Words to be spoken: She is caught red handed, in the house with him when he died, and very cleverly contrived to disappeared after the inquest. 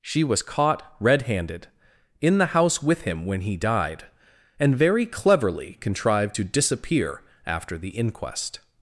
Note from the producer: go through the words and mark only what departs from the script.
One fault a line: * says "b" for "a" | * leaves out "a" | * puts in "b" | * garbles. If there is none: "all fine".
* says "was" for "is"
* says "disappear" for "disappeared"